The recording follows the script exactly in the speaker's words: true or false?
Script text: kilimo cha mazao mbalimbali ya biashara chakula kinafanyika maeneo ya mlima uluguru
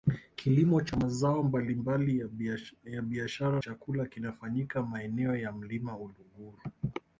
true